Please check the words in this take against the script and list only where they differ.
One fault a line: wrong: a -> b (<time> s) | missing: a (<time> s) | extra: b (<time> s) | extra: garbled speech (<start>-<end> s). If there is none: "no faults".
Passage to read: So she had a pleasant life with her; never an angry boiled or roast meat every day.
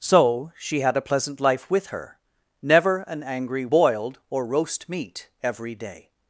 no faults